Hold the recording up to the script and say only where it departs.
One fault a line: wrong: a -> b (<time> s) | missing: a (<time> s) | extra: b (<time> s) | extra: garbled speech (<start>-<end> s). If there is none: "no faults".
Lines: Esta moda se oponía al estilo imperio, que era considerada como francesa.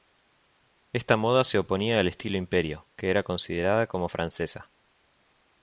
no faults